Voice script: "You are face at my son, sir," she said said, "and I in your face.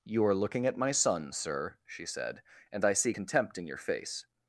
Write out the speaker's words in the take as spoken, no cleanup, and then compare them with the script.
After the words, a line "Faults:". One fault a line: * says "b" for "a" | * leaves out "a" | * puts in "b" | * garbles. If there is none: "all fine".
"You are looking at my son, sir," she said, "and I see contempt in your face.
Faults:
* says "looking" for "face"
* leaves out "said"
* puts in "see contempt"